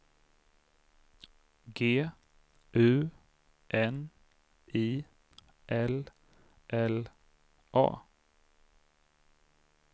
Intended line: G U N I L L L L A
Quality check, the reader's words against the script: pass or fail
fail